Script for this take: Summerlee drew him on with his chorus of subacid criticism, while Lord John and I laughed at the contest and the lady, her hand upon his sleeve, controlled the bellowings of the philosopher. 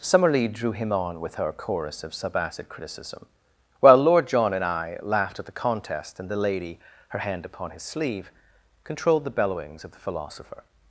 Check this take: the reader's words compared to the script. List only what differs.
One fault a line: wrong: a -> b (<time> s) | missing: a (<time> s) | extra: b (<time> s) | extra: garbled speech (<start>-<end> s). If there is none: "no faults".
wrong: his -> her (1.4 s)